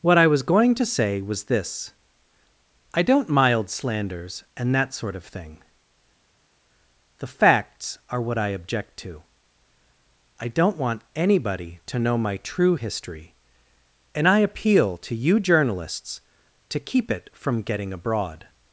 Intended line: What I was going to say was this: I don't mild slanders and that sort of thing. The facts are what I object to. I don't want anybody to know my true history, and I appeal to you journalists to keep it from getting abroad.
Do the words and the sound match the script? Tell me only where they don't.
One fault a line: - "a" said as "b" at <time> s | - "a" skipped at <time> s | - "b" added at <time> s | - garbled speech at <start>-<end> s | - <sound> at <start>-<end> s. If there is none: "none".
none